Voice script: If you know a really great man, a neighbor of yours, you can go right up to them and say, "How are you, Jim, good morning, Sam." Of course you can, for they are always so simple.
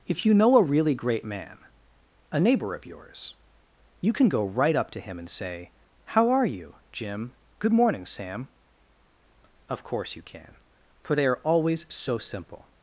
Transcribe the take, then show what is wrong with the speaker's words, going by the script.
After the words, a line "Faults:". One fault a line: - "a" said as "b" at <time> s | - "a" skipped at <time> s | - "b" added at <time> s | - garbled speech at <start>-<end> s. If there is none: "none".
If you know a really great man, a neighbor of yours, you can go right up to him and say, "How are you, Jim, good morning, Sam." Of course you can, for they are always so simple.
Faults:
- "them" said as "him" at 5.0 s